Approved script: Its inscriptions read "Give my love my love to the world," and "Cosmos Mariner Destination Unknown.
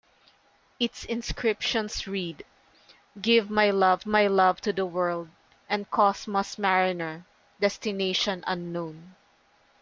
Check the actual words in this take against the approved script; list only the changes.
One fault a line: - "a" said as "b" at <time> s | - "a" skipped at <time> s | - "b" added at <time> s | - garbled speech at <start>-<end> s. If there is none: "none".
none